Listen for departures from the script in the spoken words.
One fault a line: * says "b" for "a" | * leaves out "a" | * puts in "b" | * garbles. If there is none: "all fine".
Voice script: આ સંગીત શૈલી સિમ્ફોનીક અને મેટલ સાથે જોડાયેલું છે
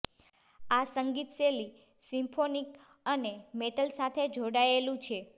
all fine